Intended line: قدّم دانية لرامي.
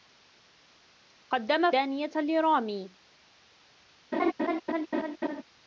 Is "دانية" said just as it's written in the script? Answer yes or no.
yes